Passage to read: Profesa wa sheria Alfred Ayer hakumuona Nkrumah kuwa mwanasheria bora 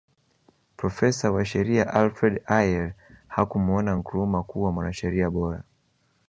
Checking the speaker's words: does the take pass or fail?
pass